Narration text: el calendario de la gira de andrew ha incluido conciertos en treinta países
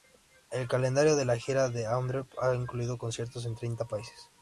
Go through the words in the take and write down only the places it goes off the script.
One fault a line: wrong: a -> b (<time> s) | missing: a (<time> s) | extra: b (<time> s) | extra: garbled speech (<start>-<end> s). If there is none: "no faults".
no faults